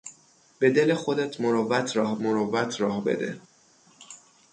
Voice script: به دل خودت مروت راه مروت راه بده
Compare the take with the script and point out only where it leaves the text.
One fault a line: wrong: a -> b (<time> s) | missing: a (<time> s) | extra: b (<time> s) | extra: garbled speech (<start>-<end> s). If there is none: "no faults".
no faults